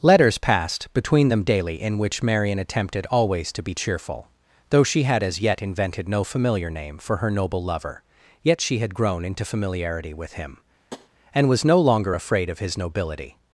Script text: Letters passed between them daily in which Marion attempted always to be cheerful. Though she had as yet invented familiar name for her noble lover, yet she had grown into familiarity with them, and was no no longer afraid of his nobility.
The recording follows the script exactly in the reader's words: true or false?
false